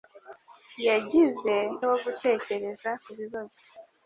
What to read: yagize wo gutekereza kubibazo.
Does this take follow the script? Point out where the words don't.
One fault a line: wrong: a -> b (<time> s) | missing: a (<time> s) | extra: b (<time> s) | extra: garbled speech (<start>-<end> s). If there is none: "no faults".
no faults